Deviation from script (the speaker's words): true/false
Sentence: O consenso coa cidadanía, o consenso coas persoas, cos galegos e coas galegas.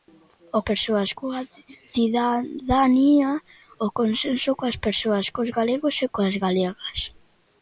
true